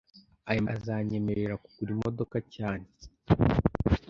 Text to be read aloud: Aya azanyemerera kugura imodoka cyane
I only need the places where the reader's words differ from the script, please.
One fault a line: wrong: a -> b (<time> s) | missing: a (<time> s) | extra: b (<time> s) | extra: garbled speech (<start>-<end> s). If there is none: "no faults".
no faults